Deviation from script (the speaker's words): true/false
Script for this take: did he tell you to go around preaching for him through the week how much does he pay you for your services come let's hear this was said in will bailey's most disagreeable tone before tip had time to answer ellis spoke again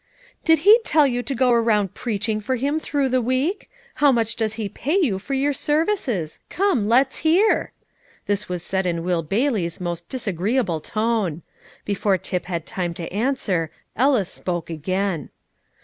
false